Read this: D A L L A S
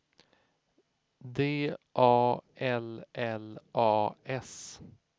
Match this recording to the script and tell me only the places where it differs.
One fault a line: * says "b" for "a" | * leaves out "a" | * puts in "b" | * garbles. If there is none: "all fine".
all fine